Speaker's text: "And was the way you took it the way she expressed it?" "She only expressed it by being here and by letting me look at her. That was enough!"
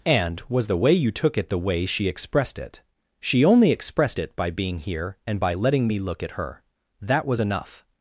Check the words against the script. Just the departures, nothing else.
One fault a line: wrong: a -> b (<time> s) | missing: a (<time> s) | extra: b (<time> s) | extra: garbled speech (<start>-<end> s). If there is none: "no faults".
no faults